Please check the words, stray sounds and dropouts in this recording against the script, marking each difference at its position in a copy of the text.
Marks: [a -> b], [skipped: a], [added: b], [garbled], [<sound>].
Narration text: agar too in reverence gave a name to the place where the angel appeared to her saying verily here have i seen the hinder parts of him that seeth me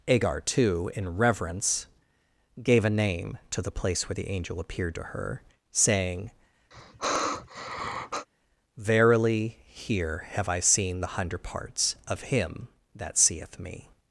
agar too in reverence gave a name to the place where the angel appeared to her saying [sigh] verily here have i seen the [hinder -> hundred] parts of him that seeth me